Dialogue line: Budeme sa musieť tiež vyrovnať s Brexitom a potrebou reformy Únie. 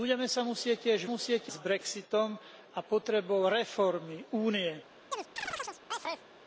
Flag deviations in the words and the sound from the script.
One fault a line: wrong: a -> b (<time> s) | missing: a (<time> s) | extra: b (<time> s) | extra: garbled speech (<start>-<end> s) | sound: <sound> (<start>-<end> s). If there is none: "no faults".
wrong: vyrovnať -> musieť (1.0 s)
sound: chirp (5.1-6.3 s)